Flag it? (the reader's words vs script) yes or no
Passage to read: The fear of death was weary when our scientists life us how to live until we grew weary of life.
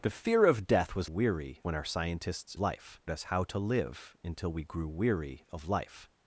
no